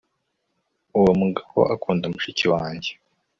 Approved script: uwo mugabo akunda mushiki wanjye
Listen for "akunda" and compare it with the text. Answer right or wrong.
right